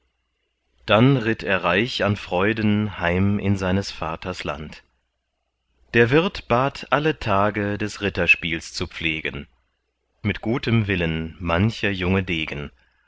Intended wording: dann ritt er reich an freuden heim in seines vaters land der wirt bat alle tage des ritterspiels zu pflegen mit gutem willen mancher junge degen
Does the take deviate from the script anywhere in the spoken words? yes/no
no